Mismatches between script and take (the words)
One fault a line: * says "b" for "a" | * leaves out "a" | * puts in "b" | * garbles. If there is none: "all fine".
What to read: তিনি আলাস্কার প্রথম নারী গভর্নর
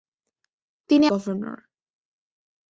* leaves out "আলাস্কার প্রথম নারী"